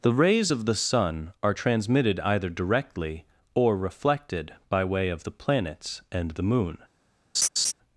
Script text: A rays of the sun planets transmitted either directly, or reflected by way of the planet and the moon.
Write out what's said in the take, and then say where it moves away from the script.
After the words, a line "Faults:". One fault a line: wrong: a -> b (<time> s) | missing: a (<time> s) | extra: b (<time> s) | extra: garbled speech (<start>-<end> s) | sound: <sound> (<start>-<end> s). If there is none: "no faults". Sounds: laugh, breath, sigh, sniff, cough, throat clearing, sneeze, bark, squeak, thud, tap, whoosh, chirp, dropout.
The rays of the sun are transmitted either directly, or reflected by way of the planets and the moon.
Faults:
wrong: A -> The (0.0 s)
wrong: planets -> are (1.4 s)
wrong: planet -> planets (5.3 s)
sound: laugh (7.3-7.7 s)